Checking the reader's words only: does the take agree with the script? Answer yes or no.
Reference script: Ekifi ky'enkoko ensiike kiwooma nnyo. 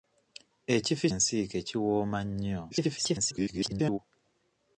no